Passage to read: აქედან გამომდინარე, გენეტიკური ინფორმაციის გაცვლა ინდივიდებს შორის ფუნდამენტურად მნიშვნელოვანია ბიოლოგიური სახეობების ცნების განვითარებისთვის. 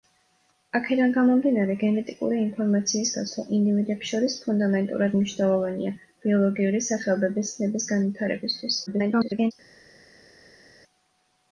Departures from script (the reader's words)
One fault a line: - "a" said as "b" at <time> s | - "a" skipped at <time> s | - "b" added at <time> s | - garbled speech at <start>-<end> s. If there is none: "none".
- garbled speech at 8.9-9.5 s